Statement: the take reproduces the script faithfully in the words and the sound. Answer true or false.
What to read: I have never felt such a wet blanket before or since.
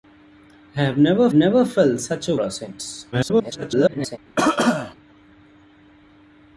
false